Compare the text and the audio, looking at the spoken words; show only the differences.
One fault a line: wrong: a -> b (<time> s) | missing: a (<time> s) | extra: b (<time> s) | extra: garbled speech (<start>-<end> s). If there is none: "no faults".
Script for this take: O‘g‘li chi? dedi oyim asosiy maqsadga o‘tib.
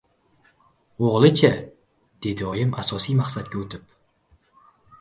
no faults